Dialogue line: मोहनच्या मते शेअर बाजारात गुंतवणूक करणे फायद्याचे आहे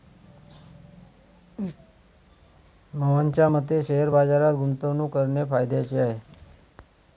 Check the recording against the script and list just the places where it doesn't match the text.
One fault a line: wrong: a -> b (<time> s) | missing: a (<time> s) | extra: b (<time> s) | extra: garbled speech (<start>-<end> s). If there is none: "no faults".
no faults